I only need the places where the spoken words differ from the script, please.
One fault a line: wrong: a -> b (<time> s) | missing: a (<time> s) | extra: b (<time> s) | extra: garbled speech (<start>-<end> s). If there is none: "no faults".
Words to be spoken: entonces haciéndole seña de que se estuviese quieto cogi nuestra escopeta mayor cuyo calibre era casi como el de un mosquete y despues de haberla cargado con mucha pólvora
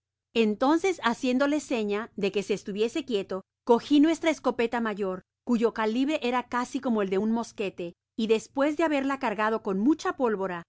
no faults